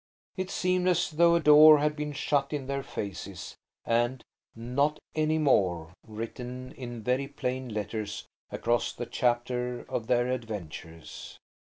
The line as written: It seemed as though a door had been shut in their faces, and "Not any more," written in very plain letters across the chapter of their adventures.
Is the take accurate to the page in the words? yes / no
yes